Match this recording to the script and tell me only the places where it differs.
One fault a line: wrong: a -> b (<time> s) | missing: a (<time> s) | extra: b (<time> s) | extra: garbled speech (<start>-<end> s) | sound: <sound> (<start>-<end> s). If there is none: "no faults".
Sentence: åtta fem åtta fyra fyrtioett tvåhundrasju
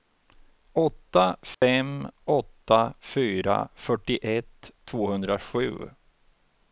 sound: dropout (1.5-1.6 s)